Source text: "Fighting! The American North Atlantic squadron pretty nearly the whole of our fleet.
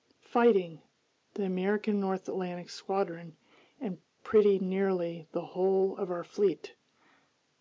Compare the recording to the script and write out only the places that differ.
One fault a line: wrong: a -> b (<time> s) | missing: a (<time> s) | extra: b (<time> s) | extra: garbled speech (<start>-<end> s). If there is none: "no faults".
extra: and (3.8 s)